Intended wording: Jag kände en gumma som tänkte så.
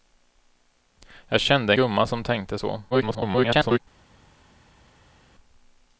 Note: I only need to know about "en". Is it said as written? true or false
false